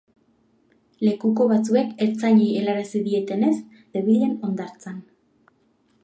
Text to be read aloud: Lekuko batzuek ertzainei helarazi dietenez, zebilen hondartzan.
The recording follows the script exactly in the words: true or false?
true